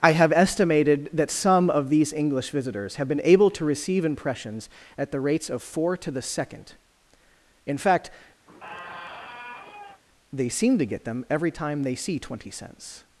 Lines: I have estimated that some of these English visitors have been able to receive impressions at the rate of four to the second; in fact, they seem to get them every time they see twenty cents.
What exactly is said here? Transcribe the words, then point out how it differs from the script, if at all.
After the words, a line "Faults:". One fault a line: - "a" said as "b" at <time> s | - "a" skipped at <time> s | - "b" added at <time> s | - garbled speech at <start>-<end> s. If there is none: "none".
I have estimated that some of these English visitors have been able to receive impressions at the rates of four to the second; in fact, they seem to get them every time they see twenty cents.
Faults:
- "rate" said as "rates" at 5.2 s